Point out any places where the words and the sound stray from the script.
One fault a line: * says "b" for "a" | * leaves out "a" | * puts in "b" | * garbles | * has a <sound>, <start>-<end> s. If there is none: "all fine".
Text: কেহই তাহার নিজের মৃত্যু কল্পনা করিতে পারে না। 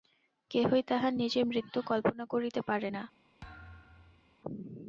* has a thud, 3.4-4.4 s